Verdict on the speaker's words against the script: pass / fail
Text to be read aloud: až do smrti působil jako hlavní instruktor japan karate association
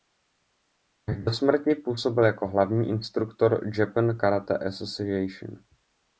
pass